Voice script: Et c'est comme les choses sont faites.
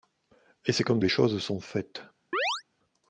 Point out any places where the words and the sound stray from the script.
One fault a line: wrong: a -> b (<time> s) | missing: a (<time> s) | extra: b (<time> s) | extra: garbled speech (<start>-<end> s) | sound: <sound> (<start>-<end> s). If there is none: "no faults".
sound: chirp (2.3-2.6 s)